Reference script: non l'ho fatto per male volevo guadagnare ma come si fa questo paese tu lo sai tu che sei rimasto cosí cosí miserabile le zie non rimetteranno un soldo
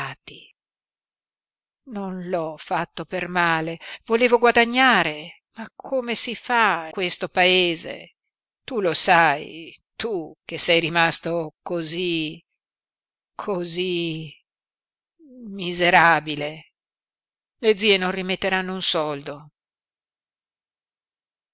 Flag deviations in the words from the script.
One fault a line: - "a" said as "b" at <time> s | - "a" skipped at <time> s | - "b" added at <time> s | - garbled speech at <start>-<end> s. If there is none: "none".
none